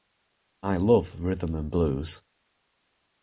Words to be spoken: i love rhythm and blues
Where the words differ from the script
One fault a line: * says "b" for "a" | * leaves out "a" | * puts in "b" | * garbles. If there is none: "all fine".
all fine